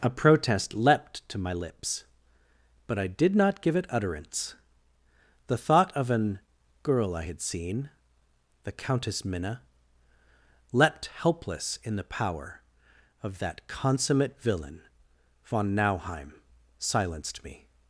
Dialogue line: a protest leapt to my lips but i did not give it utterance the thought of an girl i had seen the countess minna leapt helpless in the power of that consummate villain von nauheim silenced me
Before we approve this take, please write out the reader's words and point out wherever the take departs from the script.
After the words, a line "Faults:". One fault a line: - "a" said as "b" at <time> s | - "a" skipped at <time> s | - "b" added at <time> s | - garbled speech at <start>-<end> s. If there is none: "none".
a protest leapt to my lips but i did not give it utterance the thought of an girl i had seen the countess minna leapt helpless in the power of that consummate villain von nauheim silenced me
Faults:
none